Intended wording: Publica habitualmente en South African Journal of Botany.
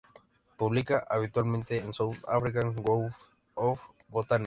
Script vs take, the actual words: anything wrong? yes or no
no